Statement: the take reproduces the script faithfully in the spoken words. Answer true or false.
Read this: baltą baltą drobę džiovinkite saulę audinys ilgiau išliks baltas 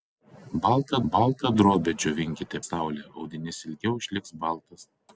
true